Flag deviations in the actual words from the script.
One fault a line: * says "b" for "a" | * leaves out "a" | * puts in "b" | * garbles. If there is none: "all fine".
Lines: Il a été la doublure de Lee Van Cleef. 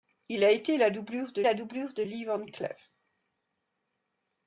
* puts in "la doublure de"